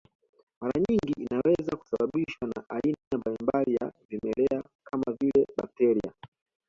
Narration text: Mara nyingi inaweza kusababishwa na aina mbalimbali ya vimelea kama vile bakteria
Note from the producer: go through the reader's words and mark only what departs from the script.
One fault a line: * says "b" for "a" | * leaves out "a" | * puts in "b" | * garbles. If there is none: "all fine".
all fine